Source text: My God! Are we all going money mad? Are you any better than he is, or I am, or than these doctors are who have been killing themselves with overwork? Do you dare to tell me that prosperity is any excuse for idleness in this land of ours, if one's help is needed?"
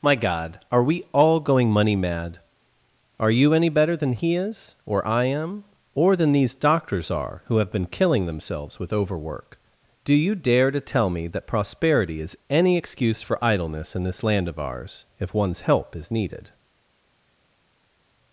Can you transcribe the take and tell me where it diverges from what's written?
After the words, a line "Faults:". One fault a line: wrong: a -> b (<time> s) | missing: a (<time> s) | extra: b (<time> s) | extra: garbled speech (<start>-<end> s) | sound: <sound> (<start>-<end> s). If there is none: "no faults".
My God! Are we all going money mad? Are you any better than he is, or I am, or than these doctors are who have been killing themselves with overwork? Do you dare to tell me that prosperity is any excuse for idleness in this land of ours, if one's help is needed?"
Faults:
no faults